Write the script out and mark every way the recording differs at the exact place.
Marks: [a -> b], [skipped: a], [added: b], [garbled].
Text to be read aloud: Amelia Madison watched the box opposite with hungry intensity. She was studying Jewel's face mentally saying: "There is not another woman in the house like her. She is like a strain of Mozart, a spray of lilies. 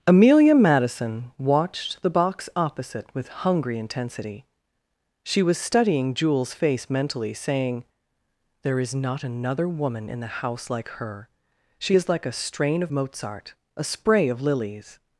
Amelia Madison watched the box opposite with hungry intensity. She was studying Jewel's face mentally saying: "There is not another woman in the house like her. She is like a strain of Mozart, a spray of lilies.